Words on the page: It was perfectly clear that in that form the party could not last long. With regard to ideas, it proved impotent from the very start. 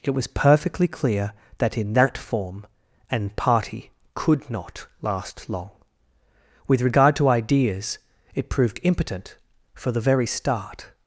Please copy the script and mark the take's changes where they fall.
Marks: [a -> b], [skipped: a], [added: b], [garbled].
It was perfectly clear that in that form [the -> an] party could not last long. With regard to ideas, it proved impotent [from -> for] the very start.